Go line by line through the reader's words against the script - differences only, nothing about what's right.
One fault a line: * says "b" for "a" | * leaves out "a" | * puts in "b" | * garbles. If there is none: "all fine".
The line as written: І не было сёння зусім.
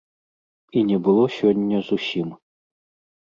all fine